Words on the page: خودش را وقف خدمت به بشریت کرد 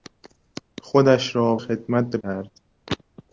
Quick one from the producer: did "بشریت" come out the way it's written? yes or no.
no